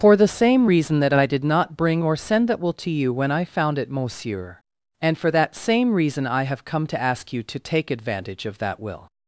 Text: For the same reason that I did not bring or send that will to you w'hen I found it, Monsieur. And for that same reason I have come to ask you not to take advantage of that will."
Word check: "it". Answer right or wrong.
right